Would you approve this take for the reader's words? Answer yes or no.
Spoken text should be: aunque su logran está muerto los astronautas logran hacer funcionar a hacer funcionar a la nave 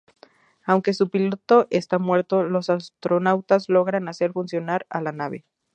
no